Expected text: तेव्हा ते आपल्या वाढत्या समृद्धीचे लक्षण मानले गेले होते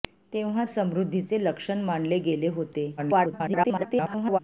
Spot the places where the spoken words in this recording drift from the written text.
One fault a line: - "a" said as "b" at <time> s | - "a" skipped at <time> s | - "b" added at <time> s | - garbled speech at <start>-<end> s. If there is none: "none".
- "ते आपल्या वाढत्या" skipped at 0.6 s
- garbled speech at 3.0-4.4 s